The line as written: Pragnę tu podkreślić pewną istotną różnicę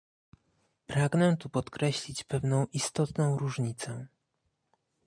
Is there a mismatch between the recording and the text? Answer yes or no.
no